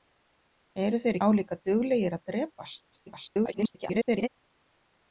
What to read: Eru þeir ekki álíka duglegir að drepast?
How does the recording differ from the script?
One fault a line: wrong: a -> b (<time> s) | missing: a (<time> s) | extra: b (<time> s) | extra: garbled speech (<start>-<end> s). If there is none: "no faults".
missing: ekki (1.2 s)
extra: garbled speech (3.1-4.3 s)